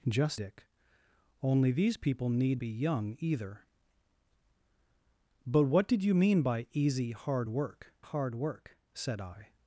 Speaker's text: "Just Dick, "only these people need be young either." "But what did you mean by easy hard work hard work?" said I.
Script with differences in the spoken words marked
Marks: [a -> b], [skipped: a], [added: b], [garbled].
"Just Dick, "only these people need be young either." "But what did you mean by easy hard work hard work?" said I.